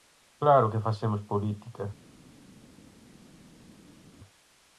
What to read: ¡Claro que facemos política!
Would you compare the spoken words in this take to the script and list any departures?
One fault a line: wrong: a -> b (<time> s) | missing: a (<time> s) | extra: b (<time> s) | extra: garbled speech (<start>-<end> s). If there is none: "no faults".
no faults